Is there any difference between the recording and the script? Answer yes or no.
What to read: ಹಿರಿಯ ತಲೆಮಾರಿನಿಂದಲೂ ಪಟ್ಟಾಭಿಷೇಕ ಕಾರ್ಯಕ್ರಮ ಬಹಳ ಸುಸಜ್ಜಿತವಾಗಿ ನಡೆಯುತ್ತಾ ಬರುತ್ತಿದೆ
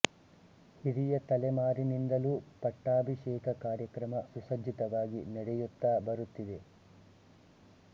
yes